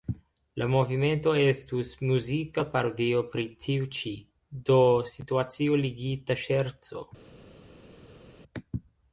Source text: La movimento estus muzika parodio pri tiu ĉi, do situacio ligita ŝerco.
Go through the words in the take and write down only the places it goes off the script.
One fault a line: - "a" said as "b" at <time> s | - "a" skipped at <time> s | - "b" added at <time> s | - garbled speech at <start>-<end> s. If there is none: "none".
none